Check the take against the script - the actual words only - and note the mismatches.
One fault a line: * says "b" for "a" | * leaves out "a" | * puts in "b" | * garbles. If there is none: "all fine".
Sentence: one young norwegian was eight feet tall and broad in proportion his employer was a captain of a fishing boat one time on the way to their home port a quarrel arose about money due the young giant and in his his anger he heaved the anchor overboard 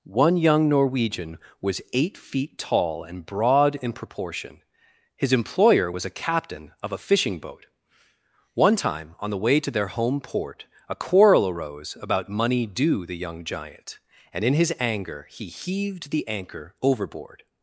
* leaves out "his"